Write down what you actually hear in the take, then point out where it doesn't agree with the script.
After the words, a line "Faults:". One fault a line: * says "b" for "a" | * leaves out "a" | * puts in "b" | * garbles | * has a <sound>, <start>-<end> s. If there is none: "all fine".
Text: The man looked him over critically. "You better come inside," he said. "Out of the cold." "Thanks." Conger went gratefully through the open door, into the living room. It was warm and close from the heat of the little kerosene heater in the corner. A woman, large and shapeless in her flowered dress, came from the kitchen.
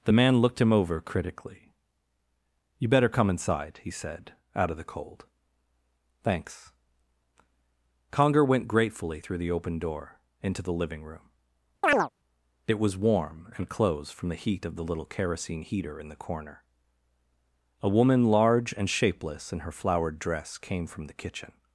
The man looked him over critically. "You better come inside," he said. "Out of the cold." "Thanks." Conger went gratefully through the open door, into the living room. It was warm and closed from the heat of the little kerosene heater in the corner. A woman, large and shapeless in her flowered dress, came from the kitchen.
Faults:
* has a chirp, 11.8-12.1 s
* says "closed" for "close"